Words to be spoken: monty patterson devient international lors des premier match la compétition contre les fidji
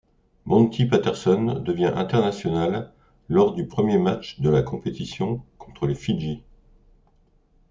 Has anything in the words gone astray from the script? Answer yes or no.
yes